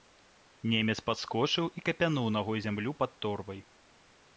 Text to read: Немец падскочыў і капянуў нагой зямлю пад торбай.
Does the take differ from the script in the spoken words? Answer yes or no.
no